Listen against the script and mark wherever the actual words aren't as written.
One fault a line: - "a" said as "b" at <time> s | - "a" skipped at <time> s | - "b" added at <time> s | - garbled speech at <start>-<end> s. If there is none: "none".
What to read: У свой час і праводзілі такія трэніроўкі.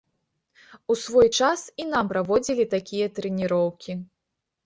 - "нам" added at 1.9 s